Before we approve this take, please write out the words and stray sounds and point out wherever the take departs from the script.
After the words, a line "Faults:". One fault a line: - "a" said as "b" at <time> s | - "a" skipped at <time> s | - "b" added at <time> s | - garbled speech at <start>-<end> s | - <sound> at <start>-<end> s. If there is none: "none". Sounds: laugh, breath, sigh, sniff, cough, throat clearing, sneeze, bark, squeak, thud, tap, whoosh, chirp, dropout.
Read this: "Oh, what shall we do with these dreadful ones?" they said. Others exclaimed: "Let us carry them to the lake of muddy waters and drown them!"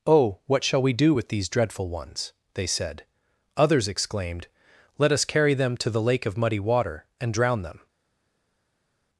"Oh, what shall we do with these dreadful ones?" they said. Others exclaimed: "Let us carry them to the lake of muddy water and drown them!"
Faults:
- "waters" said as "water" at 6.6 s